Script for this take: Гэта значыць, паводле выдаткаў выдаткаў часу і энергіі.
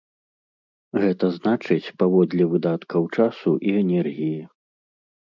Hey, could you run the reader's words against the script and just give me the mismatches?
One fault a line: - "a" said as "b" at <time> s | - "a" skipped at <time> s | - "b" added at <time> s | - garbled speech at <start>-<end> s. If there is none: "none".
- "выдаткаў" skipped at 3.0 s